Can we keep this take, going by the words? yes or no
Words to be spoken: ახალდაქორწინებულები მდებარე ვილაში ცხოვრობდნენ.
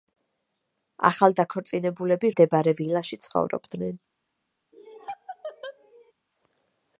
yes